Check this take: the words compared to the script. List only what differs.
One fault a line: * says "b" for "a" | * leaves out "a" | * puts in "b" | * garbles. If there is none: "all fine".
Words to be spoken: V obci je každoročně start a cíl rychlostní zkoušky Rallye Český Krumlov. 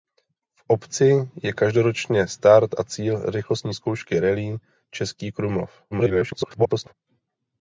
* garbles